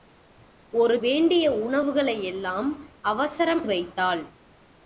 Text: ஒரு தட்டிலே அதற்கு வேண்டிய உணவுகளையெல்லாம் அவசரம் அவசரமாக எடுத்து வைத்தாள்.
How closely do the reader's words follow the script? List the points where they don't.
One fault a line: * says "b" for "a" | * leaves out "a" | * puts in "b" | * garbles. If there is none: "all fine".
* leaves out "தட்டிலே அதற்கு"
* leaves out "அவசரமாக எடுத்து"